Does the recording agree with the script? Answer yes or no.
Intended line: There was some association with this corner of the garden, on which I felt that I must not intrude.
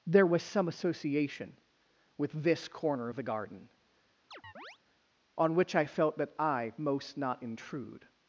no